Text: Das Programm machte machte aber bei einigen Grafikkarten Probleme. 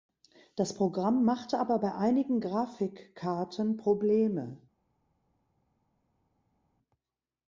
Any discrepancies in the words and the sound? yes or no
yes